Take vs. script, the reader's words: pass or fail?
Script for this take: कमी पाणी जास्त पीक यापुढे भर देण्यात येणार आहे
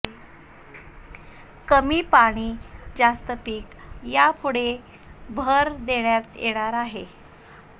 pass